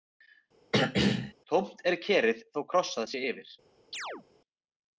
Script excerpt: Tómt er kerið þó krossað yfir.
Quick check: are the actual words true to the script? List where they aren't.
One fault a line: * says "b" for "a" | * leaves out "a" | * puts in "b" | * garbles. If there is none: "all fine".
* puts in "sé"